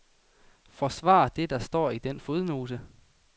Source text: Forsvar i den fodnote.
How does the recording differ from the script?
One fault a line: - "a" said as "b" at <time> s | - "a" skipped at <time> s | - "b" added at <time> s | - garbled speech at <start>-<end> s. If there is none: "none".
- "det der står" added at 1.3 s